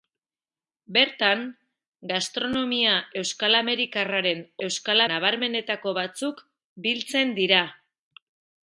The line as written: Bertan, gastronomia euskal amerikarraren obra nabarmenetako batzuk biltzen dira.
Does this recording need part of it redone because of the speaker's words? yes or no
yes